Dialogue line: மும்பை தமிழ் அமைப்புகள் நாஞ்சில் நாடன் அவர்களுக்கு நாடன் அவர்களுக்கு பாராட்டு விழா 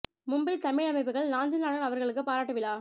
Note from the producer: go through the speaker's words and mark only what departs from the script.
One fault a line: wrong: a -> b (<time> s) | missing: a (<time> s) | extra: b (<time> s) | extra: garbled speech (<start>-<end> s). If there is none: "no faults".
missing: நாடன் அவர்களுக்கு (2.2 s)